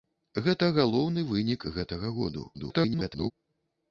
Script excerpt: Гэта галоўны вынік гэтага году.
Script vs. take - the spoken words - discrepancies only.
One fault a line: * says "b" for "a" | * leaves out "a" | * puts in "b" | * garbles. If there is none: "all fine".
* garbles